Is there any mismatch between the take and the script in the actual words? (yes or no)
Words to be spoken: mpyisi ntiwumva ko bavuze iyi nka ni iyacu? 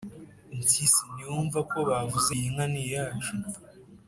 no